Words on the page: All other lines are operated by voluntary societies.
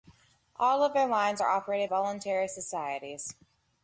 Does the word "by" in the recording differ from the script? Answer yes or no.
yes